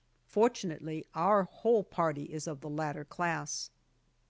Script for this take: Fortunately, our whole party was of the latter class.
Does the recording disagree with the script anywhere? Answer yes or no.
yes